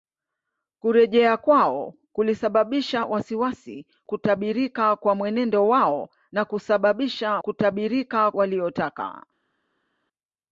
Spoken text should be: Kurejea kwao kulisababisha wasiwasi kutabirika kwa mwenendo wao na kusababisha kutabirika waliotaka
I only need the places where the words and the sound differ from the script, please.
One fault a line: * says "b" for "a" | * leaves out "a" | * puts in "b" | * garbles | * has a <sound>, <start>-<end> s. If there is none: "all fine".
all fine